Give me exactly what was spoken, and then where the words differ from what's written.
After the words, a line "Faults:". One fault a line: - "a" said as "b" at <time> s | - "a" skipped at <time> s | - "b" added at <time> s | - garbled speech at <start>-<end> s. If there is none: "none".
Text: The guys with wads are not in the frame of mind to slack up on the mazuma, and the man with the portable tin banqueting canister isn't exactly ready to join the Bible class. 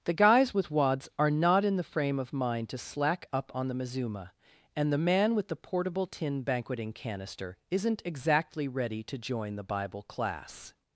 The guys with wads are not in the frame of mind to slack up on the mazuma, and the man with the portable tin banqueting canister isn't exactly ready to join the Bible class.
Faults:
none